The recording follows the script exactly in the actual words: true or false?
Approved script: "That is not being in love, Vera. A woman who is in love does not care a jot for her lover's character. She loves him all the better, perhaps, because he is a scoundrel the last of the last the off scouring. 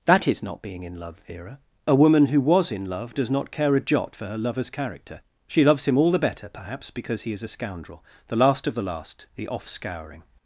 false